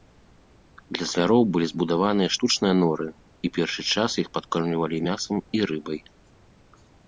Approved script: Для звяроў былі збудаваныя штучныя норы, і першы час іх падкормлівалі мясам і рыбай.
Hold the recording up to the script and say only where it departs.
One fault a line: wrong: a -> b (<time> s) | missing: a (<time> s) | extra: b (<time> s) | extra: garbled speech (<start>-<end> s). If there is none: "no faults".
no faults